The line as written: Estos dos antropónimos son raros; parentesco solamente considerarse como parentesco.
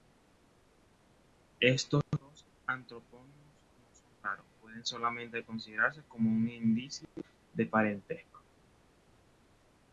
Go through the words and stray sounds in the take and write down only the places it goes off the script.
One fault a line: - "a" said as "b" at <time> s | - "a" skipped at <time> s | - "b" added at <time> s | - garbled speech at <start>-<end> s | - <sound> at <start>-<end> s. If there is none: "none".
- "no" added at 3.8 s
- "parentesco" said as "pueden" at 4.6 s
- "un indicio de" added at 6.3 s